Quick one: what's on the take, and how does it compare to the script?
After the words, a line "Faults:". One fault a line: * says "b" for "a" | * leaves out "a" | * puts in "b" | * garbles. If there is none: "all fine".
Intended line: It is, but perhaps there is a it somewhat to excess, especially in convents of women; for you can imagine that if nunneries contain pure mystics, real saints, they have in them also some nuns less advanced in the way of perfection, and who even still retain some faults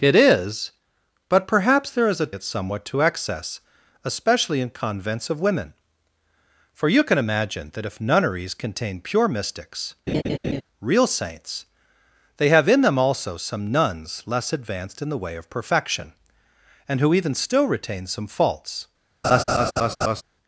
It is, but perhaps there is a it somewhat to excess, especially in convents of women; for you can imagine that if nunneries contain pure mystics, real saints, they have in them also some nuns less advanced in the way of perfection, and who even still retain some faults
Faults:
all fine